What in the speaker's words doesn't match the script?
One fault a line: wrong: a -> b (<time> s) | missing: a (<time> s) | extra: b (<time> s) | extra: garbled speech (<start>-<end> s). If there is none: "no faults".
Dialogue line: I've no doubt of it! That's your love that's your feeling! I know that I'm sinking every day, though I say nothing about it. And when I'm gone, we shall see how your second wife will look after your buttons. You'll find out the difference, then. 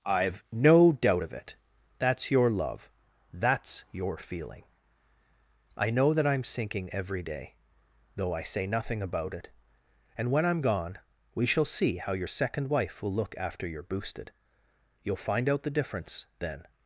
wrong: buttons -> boosted (13.8 s)